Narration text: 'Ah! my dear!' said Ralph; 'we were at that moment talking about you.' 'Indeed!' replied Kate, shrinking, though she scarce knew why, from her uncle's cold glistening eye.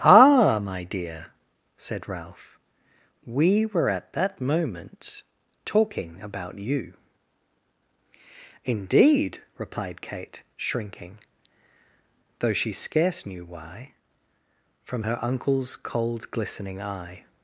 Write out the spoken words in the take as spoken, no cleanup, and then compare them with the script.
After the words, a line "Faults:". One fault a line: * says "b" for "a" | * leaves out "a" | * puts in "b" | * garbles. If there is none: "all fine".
'Ah! my dear!' said Ralph; 'we were at that moment talking about you.' 'Indeed!' replied Kate, shrinking, though she scarce knew why, from her uncle's cold glistening eye.
Faults:
all fine